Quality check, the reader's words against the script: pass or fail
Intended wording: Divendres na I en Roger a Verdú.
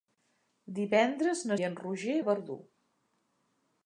pass